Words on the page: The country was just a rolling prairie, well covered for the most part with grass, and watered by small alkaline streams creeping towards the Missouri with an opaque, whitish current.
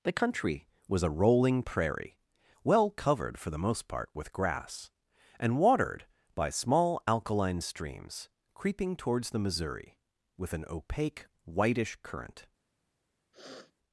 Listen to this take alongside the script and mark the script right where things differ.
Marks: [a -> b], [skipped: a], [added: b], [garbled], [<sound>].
The country was [skipped: just] a rolling prairie, well covered for the most part with grass, and watered by small alkaline streams creeping towards the Missouri with an opaque, whitish current. [sniff]